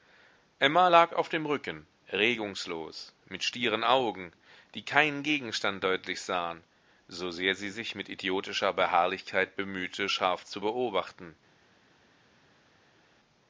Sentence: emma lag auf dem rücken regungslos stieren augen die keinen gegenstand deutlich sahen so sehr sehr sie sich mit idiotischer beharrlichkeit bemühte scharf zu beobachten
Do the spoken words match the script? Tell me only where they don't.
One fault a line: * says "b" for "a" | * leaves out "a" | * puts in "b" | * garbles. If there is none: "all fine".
* puts in "mit"
* leaves out "sehr"